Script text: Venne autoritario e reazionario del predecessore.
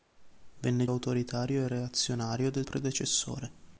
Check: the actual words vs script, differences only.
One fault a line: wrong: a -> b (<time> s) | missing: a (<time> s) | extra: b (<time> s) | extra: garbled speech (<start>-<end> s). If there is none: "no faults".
no faults